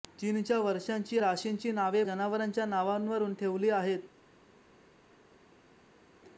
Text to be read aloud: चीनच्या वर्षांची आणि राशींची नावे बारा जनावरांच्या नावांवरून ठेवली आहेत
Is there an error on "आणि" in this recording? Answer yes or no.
yes